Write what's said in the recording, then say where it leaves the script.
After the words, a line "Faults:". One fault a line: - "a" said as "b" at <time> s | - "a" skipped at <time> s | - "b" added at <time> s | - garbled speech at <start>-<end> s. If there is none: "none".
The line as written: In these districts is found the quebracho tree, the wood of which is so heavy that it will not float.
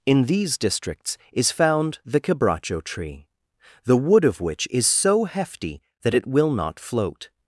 In these districts is found the quebracho tree, the wood of which is so hefty that it will not float.
Faults:
- "heavy" said as "hefty" at 5.2 s